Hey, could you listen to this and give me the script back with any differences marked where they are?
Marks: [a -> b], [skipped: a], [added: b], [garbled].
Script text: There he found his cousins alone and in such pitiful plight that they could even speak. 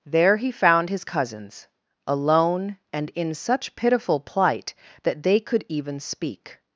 There he found his cousins alone and in such pitiful plight that they could even speak.